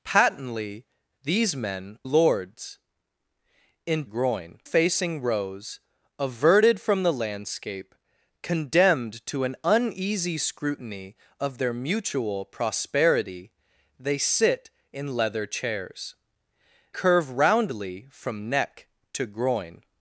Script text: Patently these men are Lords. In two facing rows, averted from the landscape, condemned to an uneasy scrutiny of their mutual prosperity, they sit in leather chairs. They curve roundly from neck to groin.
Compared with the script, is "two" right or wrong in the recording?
wrong